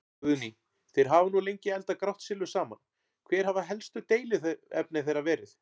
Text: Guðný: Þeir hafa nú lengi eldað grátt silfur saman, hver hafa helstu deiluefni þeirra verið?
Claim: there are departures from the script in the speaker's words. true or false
false